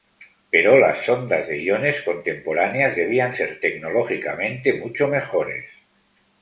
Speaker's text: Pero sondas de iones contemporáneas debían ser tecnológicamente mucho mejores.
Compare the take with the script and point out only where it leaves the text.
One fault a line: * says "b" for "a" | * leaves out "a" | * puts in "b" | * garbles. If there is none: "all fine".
* puts in "las"